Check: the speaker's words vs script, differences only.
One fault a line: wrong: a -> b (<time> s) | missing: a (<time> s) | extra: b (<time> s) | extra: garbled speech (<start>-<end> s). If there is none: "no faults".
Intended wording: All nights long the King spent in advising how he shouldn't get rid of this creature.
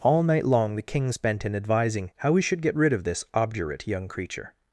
wrong: nights -> night (0.2 s)
wrong: shouldn't -> should (2.4 s)
extra: obdurate young (3.3 s)